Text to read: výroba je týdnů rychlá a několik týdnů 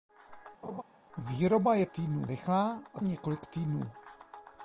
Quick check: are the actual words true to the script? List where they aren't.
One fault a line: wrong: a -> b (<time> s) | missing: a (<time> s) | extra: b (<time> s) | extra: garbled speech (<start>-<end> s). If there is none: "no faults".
no faults